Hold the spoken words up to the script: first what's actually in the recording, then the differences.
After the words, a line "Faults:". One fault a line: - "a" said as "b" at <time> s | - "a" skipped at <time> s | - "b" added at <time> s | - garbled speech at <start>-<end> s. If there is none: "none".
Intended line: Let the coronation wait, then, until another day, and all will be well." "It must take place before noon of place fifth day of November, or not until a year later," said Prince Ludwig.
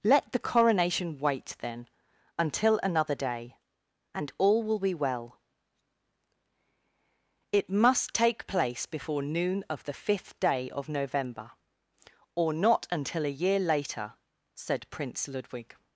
Let the coronation wait, then, until another day, and all will be well." "It must take place before noon of the fifth day of November, or not until a year later," said Prince Ludwig.
Faults:
- "place" said as "the" at 9.8 s